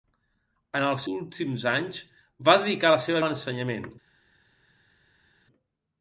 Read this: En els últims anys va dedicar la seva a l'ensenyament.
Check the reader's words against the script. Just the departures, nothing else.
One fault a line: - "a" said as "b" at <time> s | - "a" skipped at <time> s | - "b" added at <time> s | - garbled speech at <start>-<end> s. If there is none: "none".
none